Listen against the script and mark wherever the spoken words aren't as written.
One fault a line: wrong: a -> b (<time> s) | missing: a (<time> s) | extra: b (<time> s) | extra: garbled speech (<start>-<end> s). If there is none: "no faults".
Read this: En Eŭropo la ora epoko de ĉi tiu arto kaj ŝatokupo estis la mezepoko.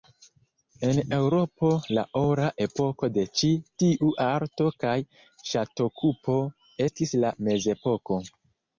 no faults